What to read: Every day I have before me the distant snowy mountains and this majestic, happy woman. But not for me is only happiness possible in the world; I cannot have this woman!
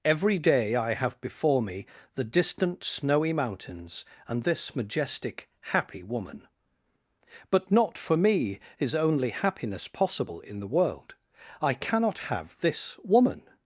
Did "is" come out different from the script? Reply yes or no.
no